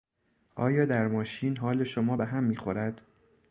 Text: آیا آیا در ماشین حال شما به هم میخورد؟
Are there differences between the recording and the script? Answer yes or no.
yes